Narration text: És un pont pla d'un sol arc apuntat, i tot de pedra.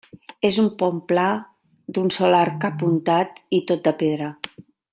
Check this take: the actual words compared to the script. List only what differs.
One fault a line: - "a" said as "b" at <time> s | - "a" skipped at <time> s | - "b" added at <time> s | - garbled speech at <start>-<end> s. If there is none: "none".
none